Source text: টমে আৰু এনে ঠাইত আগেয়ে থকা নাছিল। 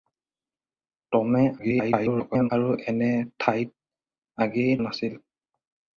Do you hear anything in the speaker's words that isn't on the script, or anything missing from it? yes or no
yes